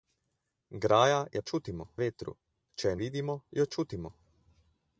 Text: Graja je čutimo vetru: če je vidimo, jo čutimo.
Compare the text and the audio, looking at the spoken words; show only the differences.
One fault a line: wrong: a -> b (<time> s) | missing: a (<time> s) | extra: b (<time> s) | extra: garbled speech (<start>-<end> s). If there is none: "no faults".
no faults